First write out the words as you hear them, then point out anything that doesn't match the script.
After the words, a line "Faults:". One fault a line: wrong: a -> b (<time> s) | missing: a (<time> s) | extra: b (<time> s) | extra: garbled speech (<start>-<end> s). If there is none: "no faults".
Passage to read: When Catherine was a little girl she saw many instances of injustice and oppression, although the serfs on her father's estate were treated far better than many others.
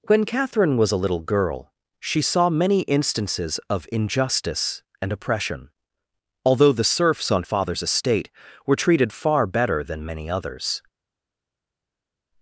When Catherine was a little girl she saw many instances of injustice and oppression, although the serfs on father's estate were treated far better than many others.
Faults:
missing: her (7.4 s)